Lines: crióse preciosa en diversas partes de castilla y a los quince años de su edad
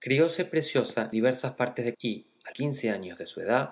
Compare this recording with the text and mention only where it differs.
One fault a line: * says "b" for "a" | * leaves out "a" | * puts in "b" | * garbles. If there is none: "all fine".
* leaves out "en"
* leaves out "castilla"
* leaves out "los"